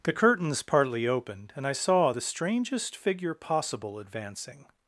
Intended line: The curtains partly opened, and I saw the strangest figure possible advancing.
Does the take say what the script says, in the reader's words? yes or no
yes